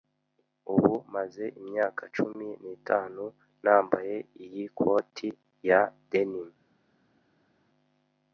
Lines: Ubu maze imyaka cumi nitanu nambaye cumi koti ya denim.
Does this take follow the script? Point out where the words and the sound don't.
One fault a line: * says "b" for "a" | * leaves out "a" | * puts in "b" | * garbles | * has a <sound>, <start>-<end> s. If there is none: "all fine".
* says "iyi" for "cumi"